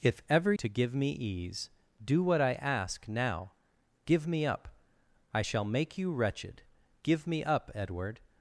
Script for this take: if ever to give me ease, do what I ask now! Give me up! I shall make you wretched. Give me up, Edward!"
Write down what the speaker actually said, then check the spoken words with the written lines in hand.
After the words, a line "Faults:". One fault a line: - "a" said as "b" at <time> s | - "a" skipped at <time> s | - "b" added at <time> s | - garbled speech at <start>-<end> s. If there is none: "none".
if ever to give me ease, do what I ask now! Give me up! I shall make you wretched. Give me up, Edward!"
Faults:
none